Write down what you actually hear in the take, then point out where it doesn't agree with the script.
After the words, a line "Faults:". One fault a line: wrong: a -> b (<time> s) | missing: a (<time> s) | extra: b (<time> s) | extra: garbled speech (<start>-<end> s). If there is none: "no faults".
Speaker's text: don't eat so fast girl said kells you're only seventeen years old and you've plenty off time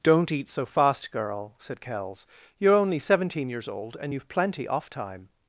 don't eat so fast girl said kells you're only seventeen years old and you've plenty off time
Faults:
no faults